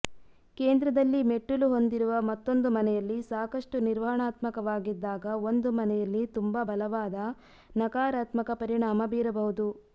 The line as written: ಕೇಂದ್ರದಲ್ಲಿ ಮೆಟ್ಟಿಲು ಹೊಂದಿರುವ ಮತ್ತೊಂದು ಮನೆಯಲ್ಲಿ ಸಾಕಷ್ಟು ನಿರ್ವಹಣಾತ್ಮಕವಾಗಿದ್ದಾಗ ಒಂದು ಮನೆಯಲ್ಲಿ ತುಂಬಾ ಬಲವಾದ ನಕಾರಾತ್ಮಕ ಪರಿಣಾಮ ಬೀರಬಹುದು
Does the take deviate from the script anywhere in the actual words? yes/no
no